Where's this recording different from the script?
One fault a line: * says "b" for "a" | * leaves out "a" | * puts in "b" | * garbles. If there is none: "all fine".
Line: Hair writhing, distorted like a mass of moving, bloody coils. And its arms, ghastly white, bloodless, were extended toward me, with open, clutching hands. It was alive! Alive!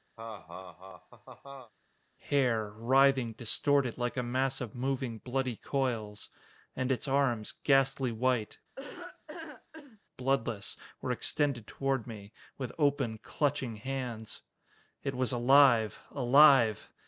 all fine